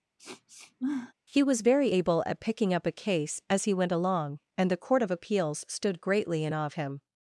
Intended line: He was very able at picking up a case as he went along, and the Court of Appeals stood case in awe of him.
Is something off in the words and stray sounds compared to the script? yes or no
yes